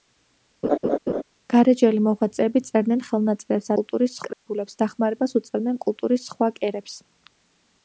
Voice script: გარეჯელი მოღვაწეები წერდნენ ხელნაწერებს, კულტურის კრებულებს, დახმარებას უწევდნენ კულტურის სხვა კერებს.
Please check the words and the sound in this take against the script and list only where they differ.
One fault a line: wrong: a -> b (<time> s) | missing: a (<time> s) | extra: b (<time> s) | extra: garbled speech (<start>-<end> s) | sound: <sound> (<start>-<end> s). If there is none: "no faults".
sound: laugh (0.6-1.2 s)
sound: dropout (4.3-4.5 s)